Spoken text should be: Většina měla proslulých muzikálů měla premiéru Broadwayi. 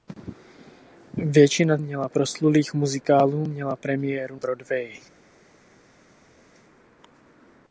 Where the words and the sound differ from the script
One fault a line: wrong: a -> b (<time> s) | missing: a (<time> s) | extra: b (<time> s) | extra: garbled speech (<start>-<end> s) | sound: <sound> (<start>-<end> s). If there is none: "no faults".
no faults